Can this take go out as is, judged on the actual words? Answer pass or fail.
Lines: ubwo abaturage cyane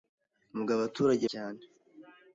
pass